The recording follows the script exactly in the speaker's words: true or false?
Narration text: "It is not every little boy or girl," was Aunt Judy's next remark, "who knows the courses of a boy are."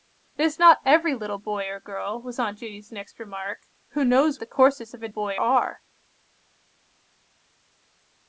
true